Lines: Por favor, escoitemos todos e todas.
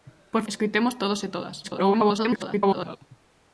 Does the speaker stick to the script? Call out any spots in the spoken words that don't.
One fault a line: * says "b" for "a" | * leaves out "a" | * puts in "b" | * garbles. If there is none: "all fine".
* leaves out "favor"
* garbles